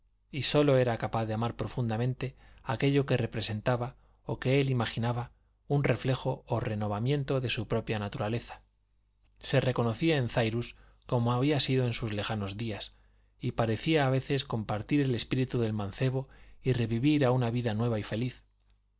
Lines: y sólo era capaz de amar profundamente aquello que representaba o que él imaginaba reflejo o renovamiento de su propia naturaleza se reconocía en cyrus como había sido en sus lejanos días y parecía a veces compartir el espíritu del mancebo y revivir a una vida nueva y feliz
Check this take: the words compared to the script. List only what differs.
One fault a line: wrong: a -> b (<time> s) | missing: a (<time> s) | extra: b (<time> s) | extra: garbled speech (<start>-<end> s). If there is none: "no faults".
extra: un (5.7 s)